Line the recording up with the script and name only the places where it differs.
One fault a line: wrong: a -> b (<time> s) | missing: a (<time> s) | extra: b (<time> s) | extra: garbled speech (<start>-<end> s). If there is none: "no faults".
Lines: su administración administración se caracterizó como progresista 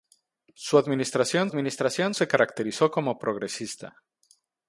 no faults